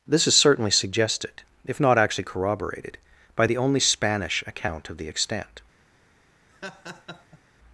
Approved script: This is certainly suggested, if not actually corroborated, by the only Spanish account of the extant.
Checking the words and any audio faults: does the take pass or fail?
fail